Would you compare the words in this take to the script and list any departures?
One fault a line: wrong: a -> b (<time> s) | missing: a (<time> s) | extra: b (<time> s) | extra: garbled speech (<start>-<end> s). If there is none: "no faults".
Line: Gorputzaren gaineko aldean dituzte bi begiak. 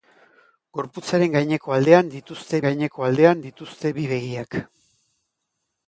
extra: gaineko aldean dituzte (2.6 s)